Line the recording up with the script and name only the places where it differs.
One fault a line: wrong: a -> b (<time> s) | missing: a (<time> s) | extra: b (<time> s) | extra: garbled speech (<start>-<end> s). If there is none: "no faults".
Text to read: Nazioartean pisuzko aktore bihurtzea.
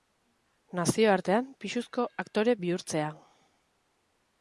no faults